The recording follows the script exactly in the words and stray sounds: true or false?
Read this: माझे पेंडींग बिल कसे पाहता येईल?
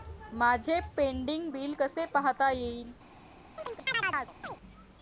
false